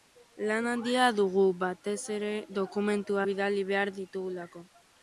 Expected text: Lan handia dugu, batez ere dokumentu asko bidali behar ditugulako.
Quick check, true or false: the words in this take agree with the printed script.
false